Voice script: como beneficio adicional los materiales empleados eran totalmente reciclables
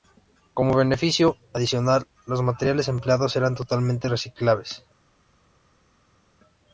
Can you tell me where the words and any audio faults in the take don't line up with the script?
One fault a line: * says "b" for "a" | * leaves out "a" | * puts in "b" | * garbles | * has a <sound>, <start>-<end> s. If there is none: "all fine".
all fine